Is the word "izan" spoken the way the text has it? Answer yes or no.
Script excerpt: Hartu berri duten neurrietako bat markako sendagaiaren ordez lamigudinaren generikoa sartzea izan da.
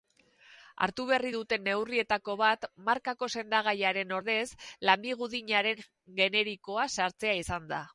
yes